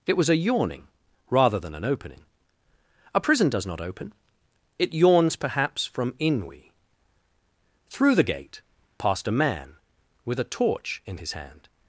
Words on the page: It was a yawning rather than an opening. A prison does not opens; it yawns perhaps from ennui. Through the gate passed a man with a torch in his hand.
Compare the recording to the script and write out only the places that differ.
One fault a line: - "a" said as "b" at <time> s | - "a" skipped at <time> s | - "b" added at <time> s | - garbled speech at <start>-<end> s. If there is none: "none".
- "opens" said as "open" at 3.8 s